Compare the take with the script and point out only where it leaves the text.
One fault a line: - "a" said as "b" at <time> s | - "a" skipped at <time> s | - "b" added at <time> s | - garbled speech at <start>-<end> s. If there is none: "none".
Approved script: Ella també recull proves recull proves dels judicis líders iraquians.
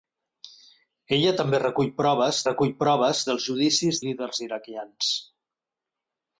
none